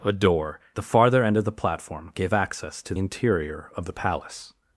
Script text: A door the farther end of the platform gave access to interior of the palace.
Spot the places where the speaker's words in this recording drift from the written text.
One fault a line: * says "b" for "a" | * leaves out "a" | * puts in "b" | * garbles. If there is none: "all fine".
all fine